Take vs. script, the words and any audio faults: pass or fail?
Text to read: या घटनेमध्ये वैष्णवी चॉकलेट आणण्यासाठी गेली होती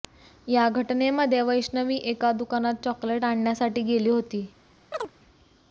fail